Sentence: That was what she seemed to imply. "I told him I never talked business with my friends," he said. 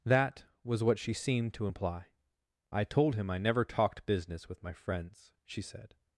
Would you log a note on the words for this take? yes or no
yes